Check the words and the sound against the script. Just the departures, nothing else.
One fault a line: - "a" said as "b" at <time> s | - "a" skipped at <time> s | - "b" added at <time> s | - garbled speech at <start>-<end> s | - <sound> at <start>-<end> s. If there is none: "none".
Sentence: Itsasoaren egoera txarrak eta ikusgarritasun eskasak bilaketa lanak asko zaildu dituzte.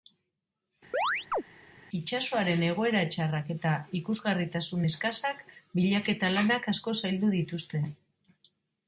- chirp at 0.9-1.4 s